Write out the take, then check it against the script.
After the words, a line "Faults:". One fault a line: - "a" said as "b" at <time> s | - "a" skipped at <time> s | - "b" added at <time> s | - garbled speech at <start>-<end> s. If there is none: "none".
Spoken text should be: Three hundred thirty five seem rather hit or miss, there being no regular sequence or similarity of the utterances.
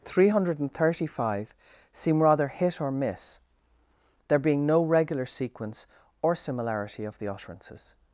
Three hundred thirty five seem rather hit or miss, there being no regular sequence or similarity of the utterances.
Faults:
none